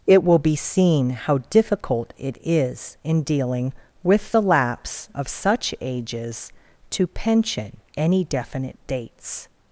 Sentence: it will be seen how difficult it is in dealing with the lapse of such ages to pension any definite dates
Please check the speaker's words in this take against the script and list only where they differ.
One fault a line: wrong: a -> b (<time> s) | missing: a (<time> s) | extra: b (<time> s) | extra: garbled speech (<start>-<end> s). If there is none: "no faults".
no faults